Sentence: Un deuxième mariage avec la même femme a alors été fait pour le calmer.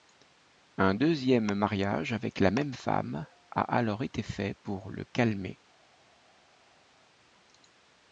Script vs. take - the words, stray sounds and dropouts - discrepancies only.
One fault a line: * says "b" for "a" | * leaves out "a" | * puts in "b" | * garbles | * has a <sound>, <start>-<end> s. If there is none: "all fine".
all fine